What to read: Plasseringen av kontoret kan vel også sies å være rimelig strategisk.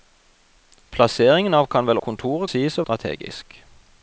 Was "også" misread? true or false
true